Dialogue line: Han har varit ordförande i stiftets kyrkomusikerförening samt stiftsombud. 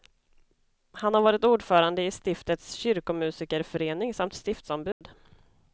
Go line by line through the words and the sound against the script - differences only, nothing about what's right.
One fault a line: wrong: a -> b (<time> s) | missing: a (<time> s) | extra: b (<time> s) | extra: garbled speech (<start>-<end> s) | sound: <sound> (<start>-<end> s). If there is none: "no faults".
sound: dropout (4.9-5.0 s)